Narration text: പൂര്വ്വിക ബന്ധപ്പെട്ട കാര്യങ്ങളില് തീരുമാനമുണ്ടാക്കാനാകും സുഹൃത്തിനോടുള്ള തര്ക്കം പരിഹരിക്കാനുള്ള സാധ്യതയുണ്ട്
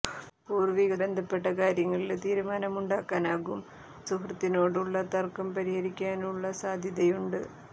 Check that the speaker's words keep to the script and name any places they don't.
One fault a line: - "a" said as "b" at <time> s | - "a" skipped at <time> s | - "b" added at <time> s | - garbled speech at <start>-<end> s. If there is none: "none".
none